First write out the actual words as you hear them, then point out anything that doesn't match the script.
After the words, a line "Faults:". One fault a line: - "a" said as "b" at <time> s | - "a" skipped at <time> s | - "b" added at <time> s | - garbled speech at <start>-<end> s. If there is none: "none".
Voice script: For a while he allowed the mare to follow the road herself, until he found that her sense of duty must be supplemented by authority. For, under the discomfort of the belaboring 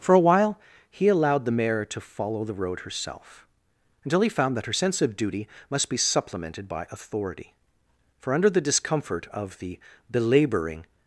For a while he allowed the mare to follow the road herself, until he found that her sense of duty must be supplemented by authority. For, under the discomfort of the belaboring
Faults:
none